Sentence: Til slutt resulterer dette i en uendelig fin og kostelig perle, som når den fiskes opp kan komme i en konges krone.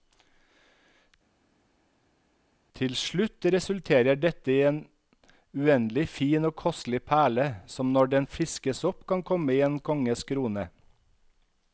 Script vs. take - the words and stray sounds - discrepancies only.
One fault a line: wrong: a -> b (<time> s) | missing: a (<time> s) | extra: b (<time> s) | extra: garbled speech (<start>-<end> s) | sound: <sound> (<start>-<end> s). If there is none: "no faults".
no faults